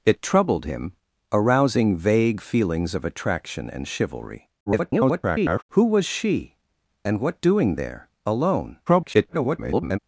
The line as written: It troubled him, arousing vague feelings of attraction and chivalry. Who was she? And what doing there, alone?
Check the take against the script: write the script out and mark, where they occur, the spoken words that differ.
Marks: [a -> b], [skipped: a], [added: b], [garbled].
It troubled him, arousing vague feelings of attraction and chivalry. [garbled] Who was she? And what doing there, alone? [garbled]